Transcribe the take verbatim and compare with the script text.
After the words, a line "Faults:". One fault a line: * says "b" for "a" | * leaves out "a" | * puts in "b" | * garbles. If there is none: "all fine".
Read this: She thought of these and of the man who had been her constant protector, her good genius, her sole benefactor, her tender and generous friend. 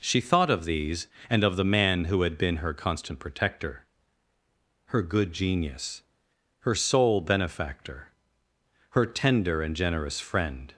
She thought of these and of the man who had been her constant protector, her good genius, her sole benefactor, her tender and generous friend.
Faults:
all fine